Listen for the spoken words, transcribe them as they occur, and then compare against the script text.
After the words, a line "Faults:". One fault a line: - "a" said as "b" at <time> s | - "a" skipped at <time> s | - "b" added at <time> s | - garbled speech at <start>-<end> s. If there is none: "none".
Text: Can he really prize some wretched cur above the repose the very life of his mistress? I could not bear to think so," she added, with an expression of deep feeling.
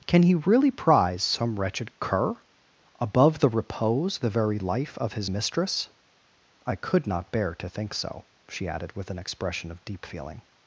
Can he really prize some wretched cur above the repose the very life of his mistress? I could not bear to think so," she added, with an expression of deep feeling.
Faults:
none